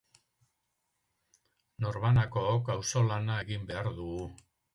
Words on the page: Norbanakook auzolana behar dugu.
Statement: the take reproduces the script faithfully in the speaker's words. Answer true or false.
false